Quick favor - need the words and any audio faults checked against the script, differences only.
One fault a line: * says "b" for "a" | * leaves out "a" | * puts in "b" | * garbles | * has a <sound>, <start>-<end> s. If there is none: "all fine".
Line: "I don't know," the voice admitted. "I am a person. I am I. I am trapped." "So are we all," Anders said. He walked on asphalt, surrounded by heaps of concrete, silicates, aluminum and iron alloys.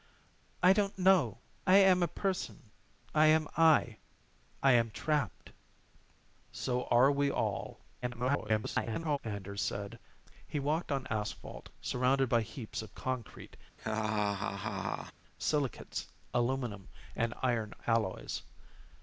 * leaves out "the voice admitted"
* garbles
* has a laugh, 13.8-15.1 s